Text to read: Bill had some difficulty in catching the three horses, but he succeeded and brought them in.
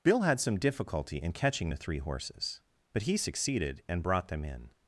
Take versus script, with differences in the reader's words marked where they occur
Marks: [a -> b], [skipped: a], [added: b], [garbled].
Bill had some difficulty in catching the three horses, but he succeeded and brought them in.